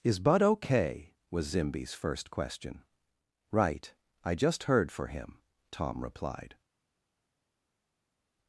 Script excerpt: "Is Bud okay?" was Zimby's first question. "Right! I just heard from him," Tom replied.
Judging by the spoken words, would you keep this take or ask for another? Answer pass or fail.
fail